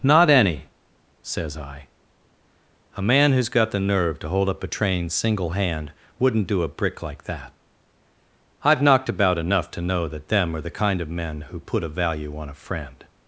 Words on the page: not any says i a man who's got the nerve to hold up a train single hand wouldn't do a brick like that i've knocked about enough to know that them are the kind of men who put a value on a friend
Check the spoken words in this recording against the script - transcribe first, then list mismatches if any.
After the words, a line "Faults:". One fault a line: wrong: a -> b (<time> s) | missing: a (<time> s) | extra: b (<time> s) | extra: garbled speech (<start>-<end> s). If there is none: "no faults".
not any says i a man who's got the nerve to hold up a train single hand wouldn't do a brick like that i've knocked about enough to know that them are the kind of men who put a value on a friend
Faults:
no faults